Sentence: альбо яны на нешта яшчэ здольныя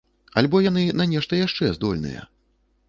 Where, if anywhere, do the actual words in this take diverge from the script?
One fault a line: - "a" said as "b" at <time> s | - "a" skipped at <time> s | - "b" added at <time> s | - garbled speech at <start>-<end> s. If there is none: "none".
none